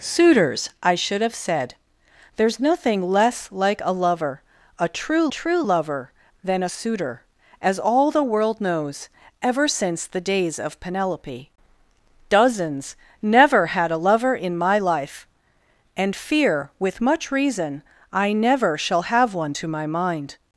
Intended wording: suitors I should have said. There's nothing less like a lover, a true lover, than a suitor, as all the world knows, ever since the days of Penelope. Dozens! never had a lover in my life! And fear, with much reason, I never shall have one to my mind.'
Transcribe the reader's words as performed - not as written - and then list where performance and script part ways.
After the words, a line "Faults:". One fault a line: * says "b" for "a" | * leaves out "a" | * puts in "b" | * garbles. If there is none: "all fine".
suitors I should have said. There's nothing less like a lover, a true true lover, than a suitor, as all the world knows, ever since the days of Penelope. Dozens! never had a lover in my life! And fear, with much reason, I never shall have one to my mind.'
Faults:
* puts in "true"